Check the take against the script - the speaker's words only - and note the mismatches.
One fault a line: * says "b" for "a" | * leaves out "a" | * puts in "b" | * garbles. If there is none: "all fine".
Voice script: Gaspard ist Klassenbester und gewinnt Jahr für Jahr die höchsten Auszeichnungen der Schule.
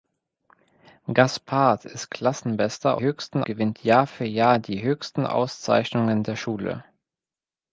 * says "höchsten" for "und"